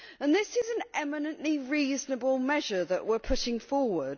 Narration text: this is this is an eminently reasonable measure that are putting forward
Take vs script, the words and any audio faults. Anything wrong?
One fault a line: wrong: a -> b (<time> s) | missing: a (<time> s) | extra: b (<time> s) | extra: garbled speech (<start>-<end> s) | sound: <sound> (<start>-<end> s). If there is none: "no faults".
missing: this is (0.7 s)
extra: we (3.0 s)